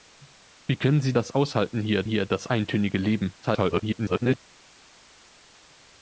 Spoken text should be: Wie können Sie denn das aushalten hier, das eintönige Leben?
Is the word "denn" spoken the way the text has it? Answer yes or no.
no